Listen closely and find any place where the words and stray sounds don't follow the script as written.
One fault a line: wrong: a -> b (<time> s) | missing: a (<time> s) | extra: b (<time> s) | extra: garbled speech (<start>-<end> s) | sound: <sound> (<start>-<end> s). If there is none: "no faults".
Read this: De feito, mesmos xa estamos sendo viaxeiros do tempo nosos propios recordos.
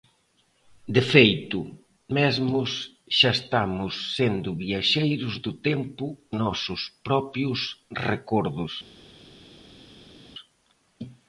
no faults